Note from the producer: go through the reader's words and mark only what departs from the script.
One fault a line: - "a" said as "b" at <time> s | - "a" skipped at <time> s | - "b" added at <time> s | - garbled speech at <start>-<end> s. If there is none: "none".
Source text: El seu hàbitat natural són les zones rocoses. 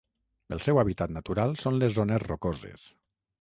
none